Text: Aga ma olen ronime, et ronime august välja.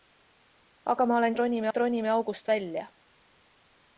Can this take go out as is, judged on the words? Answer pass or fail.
pass